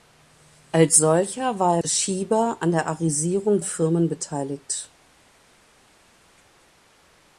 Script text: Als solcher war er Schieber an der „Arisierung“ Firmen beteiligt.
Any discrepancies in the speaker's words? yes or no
no